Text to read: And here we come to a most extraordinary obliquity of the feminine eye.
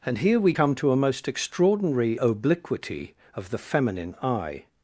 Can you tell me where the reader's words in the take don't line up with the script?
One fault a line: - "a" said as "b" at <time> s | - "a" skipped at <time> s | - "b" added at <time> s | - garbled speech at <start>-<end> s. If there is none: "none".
none